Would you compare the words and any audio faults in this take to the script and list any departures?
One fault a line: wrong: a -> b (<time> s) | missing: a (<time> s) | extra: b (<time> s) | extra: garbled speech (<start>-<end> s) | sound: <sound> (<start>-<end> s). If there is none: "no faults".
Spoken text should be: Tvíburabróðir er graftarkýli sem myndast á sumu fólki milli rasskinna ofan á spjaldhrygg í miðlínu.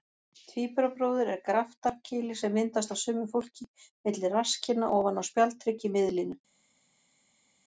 no faults